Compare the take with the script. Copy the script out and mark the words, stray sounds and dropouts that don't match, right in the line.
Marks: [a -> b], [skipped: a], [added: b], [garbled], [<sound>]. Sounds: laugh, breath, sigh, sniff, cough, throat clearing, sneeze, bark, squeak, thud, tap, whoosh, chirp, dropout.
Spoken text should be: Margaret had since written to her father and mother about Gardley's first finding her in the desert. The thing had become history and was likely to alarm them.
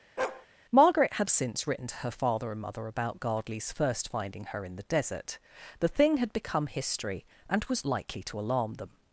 [bark] Margaret had since written to her father and mother about Gardley's first finding her in the desert. The thing had become history and was likely to alarm them.